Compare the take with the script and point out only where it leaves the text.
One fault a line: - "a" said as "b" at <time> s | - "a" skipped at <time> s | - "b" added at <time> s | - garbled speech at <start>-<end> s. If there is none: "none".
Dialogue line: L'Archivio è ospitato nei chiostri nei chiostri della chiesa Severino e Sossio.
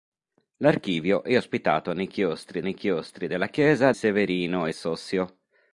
none